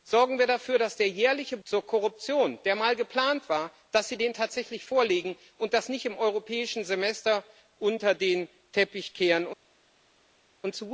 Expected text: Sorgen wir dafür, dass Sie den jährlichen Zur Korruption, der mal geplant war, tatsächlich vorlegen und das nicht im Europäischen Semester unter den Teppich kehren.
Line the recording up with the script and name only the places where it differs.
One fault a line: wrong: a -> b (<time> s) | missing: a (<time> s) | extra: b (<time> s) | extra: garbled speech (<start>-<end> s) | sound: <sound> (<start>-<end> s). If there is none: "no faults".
no faults